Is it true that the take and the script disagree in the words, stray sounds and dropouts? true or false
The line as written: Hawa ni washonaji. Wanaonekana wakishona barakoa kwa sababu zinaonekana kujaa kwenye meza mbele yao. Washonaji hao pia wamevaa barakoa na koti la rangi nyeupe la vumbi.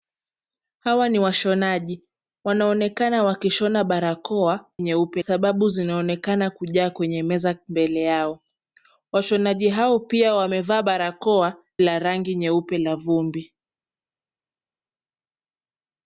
true